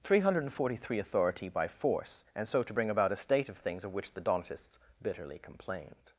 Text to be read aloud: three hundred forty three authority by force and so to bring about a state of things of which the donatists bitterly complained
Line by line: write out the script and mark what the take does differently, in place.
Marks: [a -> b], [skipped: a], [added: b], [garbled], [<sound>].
three hundred forty three authority by force and so to bring about a state of things of which the donatists bitterly complained